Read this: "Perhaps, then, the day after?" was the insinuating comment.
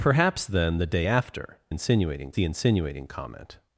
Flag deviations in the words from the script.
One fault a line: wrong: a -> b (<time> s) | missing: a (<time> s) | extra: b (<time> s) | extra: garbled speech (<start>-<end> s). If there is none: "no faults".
wrong: was -> insinuating (1.7 s)